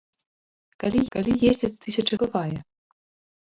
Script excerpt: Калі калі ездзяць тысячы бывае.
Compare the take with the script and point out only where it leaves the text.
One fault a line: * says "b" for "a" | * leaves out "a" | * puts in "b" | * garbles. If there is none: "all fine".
all fine